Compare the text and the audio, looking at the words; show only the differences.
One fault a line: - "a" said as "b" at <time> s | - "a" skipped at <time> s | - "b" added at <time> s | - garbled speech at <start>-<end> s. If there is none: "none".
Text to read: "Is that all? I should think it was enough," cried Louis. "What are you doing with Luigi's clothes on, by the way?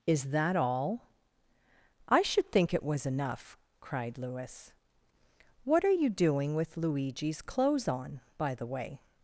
none